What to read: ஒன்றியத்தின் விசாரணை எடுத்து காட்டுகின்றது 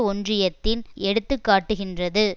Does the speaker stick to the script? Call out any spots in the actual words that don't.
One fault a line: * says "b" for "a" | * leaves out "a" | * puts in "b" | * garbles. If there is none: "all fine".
* leaves out "விசாரணை"